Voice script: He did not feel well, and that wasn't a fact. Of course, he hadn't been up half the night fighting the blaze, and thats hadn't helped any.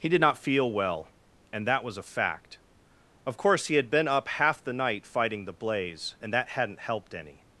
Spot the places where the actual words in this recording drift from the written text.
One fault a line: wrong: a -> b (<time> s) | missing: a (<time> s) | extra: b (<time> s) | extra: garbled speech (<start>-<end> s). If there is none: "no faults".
wrong: wasn't -> was (1.8 s)
wrong: hadn't -> had (3.8 s)
wrong: thats -> that (6.3 s)